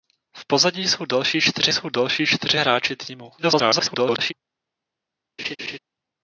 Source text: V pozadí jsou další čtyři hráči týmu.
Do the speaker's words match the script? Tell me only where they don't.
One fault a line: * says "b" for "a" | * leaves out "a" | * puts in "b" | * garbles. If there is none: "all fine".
* puts in "jsou další čtyři"
* garbles